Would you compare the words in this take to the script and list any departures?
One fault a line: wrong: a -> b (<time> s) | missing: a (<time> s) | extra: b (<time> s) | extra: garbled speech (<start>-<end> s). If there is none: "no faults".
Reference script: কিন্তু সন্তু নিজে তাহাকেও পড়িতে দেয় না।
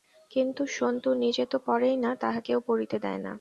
extra: তো পড়েই না (1.4 s)